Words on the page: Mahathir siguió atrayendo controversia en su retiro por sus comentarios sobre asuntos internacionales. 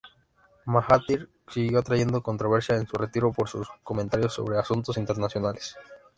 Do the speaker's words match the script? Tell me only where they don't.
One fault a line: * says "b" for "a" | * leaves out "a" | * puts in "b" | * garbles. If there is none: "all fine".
all fine